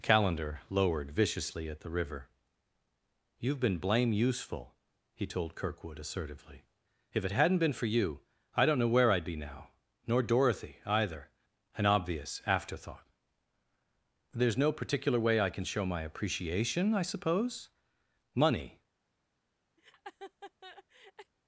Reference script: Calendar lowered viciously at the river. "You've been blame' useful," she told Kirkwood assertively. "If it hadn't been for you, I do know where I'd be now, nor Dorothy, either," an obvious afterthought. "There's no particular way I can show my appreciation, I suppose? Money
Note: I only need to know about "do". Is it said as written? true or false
false